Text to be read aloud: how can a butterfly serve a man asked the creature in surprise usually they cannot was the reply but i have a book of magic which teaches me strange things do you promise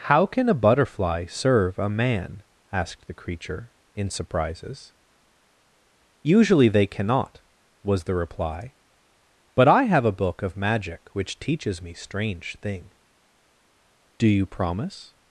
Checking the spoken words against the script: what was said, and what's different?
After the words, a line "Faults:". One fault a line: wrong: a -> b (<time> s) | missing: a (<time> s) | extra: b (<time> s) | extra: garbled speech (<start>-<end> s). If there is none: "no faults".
how can a butterfly serve a man asked the creature in surprises usually they cannot was the reply but i have a book of magic which teaches me strange thing do you promise
Faults:
wrong: surprise -> surprises (4.1 s)
wrong: things -> thing (12.6 s)